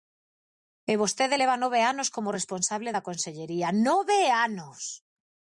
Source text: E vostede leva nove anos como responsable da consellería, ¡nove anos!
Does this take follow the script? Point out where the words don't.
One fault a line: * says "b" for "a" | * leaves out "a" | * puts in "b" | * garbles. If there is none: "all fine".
all fine